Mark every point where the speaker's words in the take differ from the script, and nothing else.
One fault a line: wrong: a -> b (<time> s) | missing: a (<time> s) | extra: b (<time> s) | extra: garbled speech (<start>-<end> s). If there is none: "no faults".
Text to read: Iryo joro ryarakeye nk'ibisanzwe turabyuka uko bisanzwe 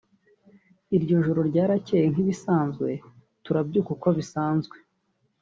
no faults